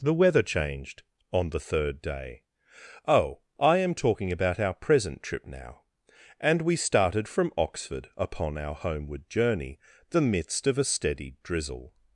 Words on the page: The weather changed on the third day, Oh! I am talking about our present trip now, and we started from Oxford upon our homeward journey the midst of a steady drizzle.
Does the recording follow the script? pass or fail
pass